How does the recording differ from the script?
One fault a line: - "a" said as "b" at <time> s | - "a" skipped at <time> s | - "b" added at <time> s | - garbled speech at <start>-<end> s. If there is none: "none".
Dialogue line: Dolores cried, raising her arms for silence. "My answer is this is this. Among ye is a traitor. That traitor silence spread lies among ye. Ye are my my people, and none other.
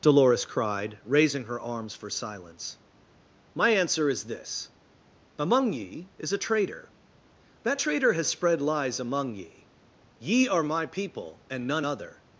- "is this" skipped at 4.7 s
- "silence" said as "has" at 8.1 s
- "my" skipped at 10.8 s